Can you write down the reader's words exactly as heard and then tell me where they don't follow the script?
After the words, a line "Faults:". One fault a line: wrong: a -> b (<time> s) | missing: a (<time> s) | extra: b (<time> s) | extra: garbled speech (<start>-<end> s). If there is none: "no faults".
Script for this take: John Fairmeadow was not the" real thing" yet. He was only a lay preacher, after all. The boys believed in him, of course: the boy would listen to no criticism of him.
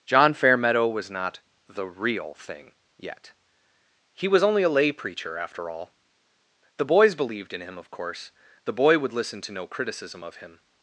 John Fairmeadow was not the" real thing" yet. He was only a lay preacher, after all. The boys believed in him, of course: the boy would listen to no criticism of him.
Faults:
no faults